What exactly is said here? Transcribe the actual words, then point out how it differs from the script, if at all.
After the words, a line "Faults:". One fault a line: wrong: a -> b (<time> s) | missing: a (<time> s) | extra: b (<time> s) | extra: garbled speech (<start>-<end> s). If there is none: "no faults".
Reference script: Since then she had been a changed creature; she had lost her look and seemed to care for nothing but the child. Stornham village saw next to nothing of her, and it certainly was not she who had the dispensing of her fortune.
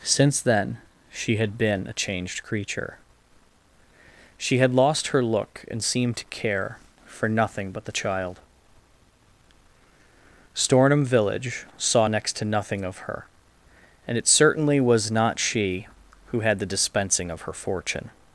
Since then she had been a changed creature; she had lost her look and seemed to care for nothing but the child. Stornham village saw next to nothing of her, and it certainly was not she who had the dispensing of her fortune.
Faults:
no faults